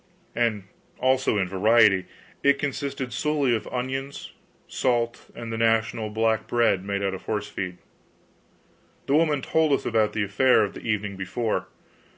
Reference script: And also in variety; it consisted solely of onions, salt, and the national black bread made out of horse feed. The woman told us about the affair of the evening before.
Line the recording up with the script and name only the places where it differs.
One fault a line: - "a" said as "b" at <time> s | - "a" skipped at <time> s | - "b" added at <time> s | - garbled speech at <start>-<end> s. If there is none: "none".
none